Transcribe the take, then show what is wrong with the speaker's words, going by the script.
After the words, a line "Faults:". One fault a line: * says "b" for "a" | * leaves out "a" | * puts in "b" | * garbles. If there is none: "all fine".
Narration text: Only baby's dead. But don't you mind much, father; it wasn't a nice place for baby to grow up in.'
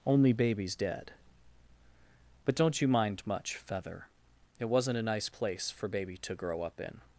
Only baby's dead. But don't you mind much, feather; it wasn't a nice place for baby to grow up in.'
Faults:
* says "feather" for "father"